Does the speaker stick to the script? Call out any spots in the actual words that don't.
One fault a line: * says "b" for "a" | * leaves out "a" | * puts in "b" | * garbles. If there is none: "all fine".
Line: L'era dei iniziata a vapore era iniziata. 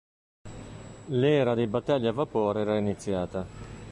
* says "battelli" for "iniziata"